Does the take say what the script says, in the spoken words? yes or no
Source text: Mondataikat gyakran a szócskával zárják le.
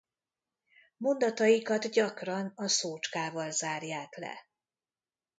yes